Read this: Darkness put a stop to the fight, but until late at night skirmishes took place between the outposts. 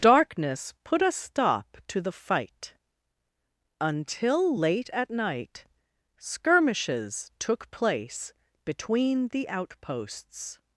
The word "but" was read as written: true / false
false